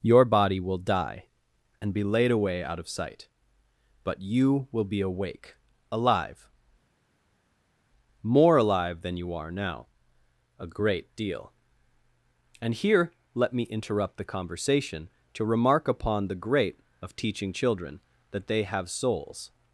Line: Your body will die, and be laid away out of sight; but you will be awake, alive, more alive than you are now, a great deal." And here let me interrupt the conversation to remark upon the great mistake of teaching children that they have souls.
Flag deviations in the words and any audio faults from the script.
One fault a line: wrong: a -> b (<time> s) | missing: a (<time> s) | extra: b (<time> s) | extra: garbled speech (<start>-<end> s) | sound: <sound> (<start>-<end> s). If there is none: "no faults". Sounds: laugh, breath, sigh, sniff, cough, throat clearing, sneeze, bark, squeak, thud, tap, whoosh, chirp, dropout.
missing: mistake (16.8 s)